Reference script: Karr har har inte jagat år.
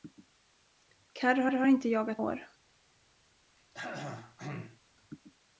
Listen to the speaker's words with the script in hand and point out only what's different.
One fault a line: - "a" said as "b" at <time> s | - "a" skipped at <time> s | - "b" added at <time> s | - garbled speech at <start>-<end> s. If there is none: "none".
none